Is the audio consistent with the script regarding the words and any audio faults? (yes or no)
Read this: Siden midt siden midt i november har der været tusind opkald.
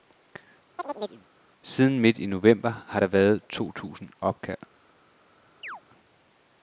no